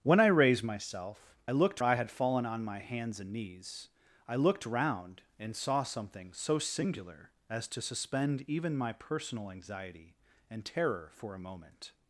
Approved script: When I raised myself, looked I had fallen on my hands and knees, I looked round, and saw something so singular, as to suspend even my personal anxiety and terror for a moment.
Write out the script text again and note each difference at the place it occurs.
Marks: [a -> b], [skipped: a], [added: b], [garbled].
When I raised myself, looked I had fallen on my hands and knees, I looked round, and saw something so singular, as to suspend even my personal anxiety and terror for a moment.